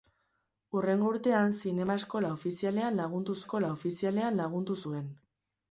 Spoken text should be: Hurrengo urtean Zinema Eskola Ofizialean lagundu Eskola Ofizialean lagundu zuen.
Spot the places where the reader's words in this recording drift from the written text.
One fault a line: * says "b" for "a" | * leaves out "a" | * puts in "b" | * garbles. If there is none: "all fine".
all fine